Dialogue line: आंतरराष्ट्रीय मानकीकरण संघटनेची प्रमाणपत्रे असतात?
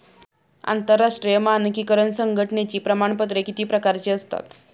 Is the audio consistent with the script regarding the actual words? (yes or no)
no